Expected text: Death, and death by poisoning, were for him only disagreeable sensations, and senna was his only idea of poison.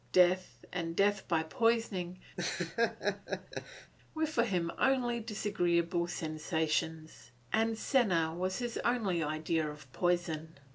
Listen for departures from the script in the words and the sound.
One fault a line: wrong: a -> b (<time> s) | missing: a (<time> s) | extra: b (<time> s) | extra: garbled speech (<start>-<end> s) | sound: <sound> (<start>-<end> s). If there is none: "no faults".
sound: laugh (2.4-3.9 s)